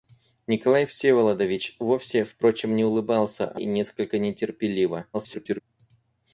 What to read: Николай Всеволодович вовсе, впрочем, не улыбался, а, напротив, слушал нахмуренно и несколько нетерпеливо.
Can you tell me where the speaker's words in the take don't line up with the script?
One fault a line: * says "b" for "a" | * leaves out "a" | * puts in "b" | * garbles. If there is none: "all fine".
* leaves out "напротив слушал нахмуренно"
* garbles